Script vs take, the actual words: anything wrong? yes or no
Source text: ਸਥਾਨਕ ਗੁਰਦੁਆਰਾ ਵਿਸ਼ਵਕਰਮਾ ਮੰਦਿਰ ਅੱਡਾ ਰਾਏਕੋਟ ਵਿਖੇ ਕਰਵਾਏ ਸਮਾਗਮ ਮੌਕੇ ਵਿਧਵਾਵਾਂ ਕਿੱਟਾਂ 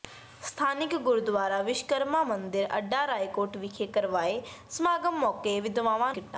no